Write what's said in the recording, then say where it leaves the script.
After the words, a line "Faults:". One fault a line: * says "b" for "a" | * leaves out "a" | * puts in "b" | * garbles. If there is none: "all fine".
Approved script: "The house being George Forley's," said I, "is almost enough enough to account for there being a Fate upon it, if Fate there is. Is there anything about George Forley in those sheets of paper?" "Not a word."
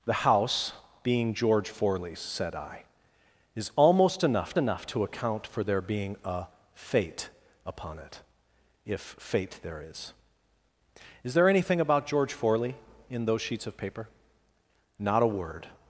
"The house being George Forley's," said I, "is almost enough enough to account for there being a Fate upon it, if Fate there is. Is there anything about George Forley in those sheets of paper?" "Not a word."
Faults:
all fine